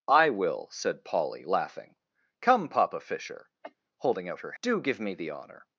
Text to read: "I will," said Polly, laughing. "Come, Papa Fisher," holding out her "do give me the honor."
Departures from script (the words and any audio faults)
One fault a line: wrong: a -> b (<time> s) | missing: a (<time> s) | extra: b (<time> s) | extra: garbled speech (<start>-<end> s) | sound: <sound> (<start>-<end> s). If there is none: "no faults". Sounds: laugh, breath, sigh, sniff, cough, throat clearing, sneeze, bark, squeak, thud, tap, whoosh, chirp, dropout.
sound: cough (3.6-3.7 s)